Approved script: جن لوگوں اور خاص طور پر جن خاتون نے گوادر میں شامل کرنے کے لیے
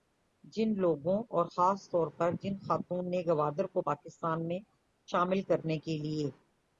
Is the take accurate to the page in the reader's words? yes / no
no